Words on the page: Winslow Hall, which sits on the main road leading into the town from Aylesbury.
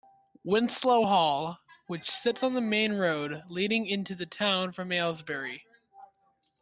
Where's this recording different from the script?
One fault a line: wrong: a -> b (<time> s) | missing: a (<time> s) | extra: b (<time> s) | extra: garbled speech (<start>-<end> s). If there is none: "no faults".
no faults